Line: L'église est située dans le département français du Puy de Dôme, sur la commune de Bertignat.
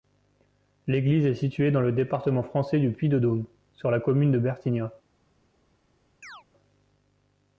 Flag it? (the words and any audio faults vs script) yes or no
yes